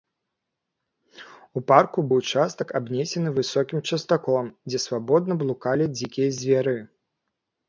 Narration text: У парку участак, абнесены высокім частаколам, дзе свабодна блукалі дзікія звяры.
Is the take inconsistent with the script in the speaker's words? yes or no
no